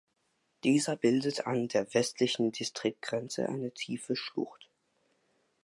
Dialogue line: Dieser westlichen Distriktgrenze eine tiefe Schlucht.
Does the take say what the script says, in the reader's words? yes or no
no